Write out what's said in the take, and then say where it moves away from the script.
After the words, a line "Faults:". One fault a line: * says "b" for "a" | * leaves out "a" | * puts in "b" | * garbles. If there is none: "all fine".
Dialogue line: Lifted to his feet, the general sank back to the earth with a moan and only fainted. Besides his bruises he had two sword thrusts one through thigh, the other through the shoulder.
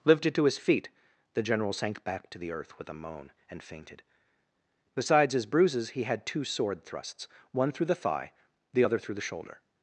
Lifted to his feet, the general sank back to the earth with a moan and fainted. Besides his bruises he had two sword thrusts one through the thigh, the other through the shoulder.
Faults:
* leaves out "only"
* puts in "the"